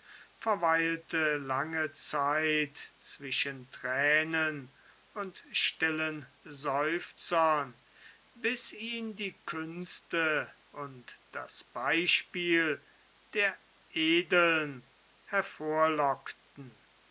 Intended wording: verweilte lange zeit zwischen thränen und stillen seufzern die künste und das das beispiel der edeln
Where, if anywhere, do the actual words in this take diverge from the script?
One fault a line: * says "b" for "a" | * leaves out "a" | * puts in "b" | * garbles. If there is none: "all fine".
* puts in "bis ihn"
* leaves out "das"